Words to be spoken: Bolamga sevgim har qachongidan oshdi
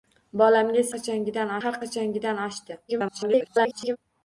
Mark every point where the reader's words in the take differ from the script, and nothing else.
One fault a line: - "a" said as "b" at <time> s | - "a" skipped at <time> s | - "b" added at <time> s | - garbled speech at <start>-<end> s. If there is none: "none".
- "sevgim" said as "qachongidan" at 0.9 s
- garbled speech at 2.9-4.0 s